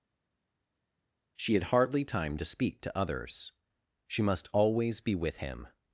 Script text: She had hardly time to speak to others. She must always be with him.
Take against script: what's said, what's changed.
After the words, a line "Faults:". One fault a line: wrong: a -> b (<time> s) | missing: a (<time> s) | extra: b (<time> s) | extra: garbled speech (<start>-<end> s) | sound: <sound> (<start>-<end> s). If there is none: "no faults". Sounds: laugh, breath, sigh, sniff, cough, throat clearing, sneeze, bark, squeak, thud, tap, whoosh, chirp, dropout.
She had hardly time to speak to others. She must always be with him.
Faults:
no faults